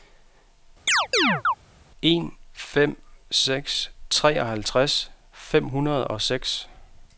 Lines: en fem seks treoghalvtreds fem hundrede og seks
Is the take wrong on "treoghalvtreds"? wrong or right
right